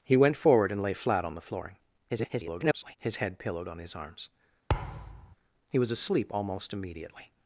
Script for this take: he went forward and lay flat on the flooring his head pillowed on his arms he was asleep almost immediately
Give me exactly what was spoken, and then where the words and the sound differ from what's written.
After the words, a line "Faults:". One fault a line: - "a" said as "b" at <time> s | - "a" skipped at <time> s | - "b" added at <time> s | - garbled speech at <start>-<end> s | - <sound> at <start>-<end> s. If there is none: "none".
he went forward and lay flat on the flooring [garbled] his head pillowed on his arms he was asleep almost immediately
Faults:
- garbled speech at 2.1-3.0 s
- thud at 4.7-5.4 s